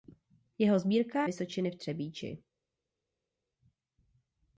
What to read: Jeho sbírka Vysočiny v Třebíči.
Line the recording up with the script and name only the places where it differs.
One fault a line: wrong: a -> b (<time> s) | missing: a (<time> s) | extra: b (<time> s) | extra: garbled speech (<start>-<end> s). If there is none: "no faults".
no faults